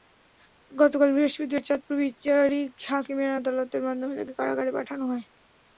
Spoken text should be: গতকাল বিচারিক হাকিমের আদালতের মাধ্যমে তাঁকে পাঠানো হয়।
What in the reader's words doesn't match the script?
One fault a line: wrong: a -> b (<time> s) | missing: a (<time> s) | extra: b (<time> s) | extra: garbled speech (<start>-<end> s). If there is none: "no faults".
extra: বৃহস্পতিবার চাঁদপুর (1.1 s)
extra: কারাগারে (4.4 s)